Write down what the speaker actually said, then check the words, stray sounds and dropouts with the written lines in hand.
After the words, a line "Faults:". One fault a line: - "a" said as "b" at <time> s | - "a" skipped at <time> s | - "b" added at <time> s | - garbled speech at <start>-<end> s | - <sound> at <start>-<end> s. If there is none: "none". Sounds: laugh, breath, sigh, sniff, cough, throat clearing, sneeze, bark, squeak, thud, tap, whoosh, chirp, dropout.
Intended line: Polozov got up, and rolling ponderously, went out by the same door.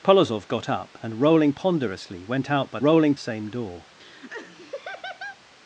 Polozov got up, and rolling ponderously, went out by rolling same door.
Faults:
- "the" said as "rolling" at 2.8 s
- laugh at 4.0-5.4 s